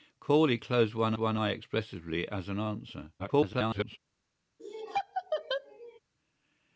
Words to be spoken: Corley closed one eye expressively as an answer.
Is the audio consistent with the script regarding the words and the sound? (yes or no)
no